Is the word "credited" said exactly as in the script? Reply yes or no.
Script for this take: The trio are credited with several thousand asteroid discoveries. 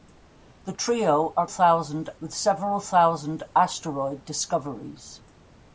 no